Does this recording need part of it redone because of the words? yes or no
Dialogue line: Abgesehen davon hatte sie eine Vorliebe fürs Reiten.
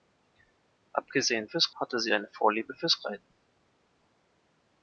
yes